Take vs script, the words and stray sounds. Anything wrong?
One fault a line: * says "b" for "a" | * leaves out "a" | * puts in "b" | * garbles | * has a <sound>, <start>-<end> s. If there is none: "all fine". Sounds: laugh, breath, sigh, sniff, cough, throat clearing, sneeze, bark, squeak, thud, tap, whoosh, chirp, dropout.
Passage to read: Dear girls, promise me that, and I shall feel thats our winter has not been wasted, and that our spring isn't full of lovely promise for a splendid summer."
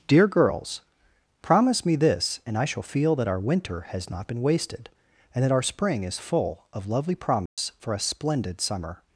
* says "this" for "that"
* says "that" for "thats"
* says "is" for "isn't"
* has a dropout, 7.5-7.6 s